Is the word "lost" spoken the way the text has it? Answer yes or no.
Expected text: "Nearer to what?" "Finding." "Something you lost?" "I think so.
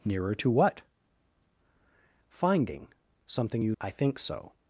no